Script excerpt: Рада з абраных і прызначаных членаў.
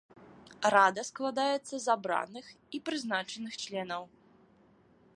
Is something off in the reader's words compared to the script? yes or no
yes